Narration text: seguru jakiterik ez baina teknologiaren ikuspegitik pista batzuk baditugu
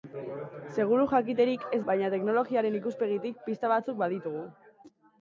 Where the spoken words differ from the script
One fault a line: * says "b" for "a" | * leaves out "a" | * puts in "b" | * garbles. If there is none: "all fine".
all fine